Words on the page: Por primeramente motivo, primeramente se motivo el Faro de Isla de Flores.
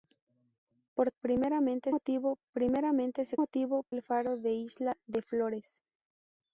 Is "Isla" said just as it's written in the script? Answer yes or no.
yes